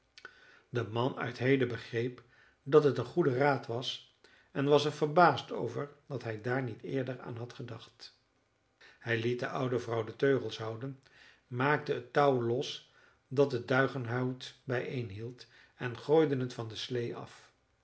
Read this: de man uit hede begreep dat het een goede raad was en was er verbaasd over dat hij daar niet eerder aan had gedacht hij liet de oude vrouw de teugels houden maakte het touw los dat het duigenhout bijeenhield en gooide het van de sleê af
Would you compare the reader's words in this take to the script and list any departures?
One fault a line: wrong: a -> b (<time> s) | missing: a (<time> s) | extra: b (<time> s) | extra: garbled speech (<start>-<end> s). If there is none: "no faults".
no faults